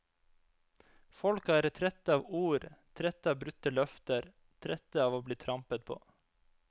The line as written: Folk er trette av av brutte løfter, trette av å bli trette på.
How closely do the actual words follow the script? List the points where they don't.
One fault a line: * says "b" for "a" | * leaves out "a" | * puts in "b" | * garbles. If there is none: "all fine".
* puts in "ord trette"
* says "trampet" for "trette"